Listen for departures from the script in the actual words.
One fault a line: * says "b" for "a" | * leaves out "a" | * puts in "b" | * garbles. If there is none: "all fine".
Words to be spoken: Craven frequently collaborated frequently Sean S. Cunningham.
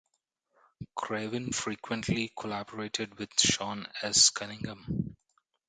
* says "with" for "frequently"